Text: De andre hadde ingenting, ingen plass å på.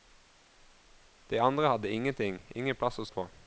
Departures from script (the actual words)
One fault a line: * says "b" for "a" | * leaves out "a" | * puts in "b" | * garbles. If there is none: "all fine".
all fine